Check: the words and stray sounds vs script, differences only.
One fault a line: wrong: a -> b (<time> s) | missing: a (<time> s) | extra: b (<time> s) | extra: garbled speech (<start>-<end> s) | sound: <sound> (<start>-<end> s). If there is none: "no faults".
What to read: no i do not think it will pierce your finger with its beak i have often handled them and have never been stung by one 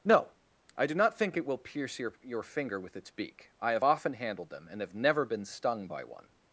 extra: your (2.2 s)